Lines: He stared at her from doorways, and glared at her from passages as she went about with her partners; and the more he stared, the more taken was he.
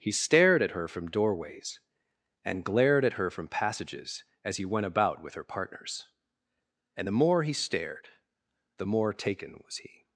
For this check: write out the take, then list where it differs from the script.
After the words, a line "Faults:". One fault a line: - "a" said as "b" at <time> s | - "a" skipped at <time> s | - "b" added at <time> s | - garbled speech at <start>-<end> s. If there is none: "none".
He stared at her from doorways, and glared at her from passages as he went about with her partners; and the more he stared, the more taken was he.
Faults:
- "she" said as "he" at 4.6 s